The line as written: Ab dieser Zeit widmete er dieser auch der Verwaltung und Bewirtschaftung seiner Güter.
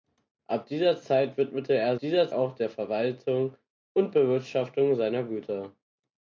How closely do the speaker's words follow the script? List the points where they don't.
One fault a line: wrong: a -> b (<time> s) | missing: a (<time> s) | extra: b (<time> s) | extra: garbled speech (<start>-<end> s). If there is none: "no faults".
no faults